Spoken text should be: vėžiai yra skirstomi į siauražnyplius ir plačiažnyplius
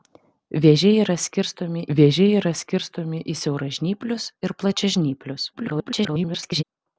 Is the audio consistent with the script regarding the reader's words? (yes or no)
no